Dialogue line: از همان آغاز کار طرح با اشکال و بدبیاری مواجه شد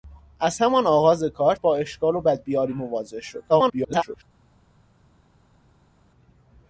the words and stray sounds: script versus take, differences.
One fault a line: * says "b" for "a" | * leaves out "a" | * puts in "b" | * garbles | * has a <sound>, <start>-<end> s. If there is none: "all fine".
* leaves out "طرح"
* garbles